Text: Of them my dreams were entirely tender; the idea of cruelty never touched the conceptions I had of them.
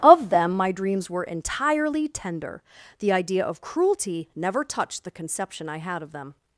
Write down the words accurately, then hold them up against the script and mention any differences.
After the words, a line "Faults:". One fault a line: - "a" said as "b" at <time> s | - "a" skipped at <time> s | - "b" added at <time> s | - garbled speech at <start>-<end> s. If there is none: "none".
Of them my dreams were entirely tender; the idea of cruelty never touched the conception I had of them.
Faults:
- "conceptions" said as "conception" at 5.1 s